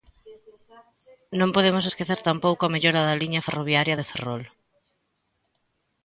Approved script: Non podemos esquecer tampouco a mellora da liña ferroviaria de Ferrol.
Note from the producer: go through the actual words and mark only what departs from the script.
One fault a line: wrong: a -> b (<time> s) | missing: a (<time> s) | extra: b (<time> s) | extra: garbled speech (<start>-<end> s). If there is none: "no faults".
no faults